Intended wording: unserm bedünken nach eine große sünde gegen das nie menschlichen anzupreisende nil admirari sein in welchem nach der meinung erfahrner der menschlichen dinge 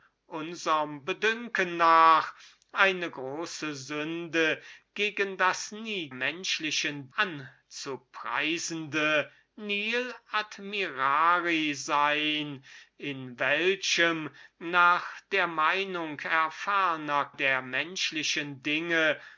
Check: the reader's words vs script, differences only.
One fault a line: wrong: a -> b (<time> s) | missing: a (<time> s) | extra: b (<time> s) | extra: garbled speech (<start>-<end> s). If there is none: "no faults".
no faults